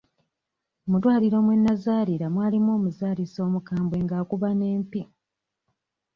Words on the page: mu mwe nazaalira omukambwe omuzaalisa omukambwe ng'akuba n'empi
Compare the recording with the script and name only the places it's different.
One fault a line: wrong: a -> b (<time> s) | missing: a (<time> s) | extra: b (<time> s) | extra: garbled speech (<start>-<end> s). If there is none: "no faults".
extra: ddwaliro (1.0 s)
wrong: omukambwe -> mwalimu (2.3 s)